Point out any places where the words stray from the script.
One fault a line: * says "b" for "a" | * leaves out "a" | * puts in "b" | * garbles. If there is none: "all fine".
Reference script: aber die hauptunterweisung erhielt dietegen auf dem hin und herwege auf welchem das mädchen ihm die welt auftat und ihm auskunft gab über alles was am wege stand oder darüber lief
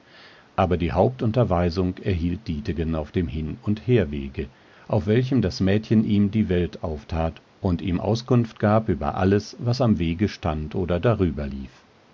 all fine